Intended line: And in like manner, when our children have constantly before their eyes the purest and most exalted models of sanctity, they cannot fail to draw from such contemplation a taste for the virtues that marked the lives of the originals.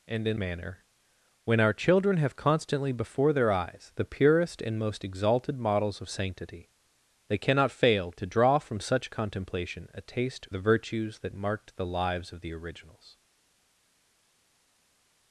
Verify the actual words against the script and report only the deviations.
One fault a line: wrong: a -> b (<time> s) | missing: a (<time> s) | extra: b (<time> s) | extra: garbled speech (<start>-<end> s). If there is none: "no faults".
missing: like (0.4 s)
missing: for (10.5 s)